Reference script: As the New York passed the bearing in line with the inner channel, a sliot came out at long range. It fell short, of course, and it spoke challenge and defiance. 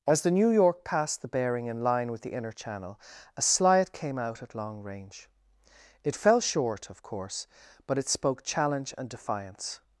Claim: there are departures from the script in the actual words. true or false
true